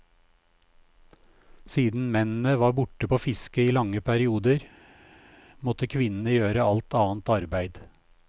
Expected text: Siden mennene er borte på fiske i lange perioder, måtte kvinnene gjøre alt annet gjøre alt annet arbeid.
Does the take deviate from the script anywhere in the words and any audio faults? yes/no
yes